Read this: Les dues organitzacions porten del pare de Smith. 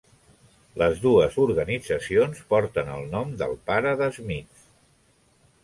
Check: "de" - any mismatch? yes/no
no